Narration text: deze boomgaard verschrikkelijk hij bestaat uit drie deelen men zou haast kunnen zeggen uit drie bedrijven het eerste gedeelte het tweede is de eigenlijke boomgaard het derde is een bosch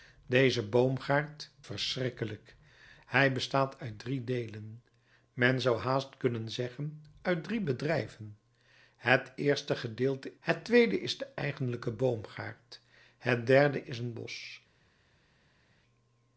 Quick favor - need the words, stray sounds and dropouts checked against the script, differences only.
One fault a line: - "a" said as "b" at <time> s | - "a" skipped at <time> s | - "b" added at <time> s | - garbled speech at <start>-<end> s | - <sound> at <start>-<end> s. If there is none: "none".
none